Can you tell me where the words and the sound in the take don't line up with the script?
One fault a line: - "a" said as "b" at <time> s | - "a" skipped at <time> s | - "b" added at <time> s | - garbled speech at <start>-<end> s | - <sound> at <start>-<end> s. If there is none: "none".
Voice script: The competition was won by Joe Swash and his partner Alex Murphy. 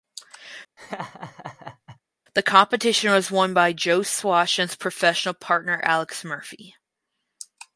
- laugh at 0.8-2.0 s
- "professional" added at 4.8 s